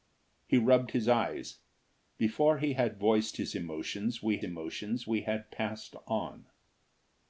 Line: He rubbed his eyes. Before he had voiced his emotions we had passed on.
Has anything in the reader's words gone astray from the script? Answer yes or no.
yes